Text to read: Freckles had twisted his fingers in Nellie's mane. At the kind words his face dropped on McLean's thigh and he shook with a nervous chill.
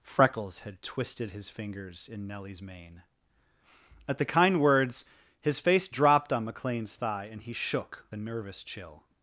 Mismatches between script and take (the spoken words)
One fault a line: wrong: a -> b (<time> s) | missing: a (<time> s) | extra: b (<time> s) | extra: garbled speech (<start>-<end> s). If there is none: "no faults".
missing: with (8.1 s)